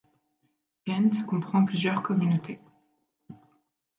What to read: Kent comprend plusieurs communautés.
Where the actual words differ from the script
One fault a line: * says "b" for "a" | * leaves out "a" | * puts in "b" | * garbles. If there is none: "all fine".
all fine